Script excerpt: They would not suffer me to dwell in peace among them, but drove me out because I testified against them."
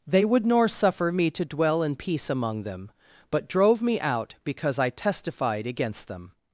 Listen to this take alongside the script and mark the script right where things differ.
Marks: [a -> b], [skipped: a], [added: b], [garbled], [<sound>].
They would [not -> nor] suffer me to dwell in peace among them, but drove me out because I testified against them."